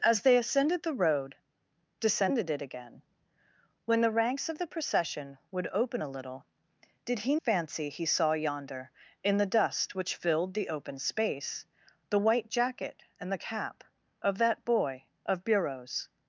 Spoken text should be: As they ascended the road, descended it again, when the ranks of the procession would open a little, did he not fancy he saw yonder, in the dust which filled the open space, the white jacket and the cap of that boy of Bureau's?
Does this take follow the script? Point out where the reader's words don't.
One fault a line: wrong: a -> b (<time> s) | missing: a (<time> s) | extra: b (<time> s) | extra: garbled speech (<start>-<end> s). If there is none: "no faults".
missing: not (7.4 s)